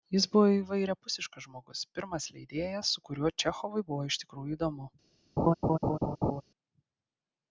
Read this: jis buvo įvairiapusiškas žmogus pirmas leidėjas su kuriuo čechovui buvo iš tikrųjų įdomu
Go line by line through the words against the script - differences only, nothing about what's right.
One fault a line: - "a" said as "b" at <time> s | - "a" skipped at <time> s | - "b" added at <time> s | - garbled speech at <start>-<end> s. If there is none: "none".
none